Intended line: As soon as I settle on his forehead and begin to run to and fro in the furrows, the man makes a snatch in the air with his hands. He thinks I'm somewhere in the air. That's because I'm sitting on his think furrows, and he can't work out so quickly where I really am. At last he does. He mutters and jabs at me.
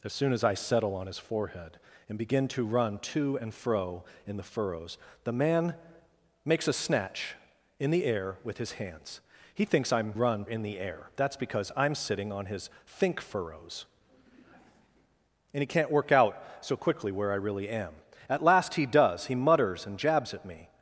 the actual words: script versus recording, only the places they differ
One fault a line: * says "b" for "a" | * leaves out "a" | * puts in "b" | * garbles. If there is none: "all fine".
* says "run" for "somewhere"